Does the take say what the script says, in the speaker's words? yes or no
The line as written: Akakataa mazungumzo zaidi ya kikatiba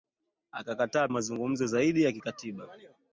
yes